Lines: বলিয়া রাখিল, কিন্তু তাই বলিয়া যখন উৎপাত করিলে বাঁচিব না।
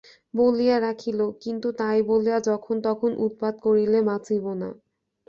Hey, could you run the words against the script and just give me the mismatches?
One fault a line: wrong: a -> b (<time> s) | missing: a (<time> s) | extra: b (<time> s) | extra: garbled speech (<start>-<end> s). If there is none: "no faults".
extra: তখন (2.9 s)